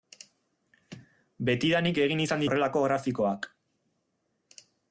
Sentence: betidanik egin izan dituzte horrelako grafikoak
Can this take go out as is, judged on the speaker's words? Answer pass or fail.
fail